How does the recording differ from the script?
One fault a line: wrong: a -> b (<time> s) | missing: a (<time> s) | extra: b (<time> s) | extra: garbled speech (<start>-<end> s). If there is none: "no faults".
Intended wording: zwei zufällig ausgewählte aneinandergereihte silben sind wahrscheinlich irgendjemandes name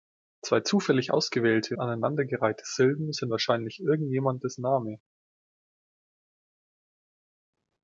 no faults